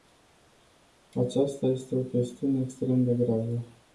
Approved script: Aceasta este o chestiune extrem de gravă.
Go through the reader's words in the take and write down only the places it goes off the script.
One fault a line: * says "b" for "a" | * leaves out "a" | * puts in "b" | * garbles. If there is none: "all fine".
all fine